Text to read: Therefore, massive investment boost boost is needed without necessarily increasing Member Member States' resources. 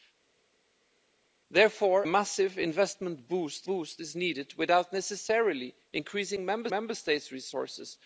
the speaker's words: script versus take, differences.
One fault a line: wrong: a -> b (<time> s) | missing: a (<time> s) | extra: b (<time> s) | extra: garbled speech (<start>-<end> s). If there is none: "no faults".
no faults